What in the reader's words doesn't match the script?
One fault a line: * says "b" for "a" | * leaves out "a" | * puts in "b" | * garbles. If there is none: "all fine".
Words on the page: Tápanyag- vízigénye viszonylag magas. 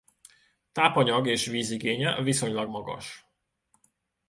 * puts in "és"